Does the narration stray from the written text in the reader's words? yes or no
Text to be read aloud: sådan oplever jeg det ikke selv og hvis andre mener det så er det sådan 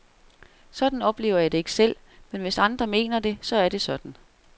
yes